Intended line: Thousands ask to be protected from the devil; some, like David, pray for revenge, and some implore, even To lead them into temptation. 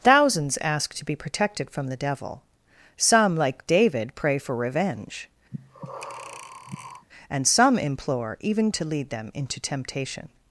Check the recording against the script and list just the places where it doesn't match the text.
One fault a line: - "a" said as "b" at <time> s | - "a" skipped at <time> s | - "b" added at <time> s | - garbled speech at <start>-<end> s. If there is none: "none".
none